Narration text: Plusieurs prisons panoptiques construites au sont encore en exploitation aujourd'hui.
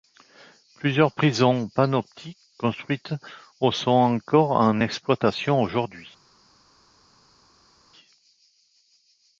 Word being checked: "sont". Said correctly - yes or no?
yes